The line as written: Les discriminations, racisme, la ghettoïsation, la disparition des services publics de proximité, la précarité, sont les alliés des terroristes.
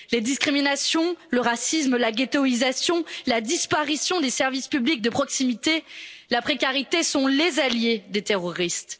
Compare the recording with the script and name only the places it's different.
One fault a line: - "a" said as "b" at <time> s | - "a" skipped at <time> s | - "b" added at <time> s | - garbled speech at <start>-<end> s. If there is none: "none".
- "le" added at 1.3 s